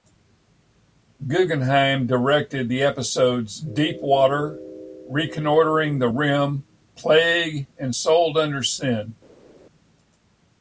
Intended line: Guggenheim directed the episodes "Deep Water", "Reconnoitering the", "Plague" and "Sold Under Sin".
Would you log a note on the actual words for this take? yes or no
yes